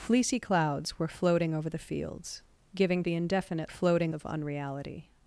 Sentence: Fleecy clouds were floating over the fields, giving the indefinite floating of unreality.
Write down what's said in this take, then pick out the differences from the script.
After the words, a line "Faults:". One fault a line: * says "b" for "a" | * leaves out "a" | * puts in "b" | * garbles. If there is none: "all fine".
Fleecy clouds were floating over the fields, giving the indefinite floating of unreality.
Faults:
all fine